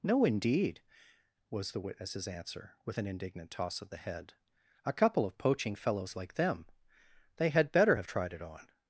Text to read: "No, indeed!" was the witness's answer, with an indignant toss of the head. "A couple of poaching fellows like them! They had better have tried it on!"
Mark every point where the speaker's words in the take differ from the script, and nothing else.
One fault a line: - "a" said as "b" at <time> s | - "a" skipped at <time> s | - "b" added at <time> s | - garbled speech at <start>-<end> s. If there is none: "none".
none